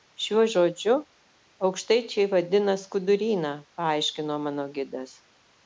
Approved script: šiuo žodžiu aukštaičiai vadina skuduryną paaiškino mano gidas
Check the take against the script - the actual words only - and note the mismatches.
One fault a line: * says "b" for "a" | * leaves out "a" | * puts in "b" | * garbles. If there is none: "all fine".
all fine